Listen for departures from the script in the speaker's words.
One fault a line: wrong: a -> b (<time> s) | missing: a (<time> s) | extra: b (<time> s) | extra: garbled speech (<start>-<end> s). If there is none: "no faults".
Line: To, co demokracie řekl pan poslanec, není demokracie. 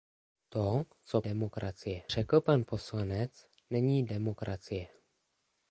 no faults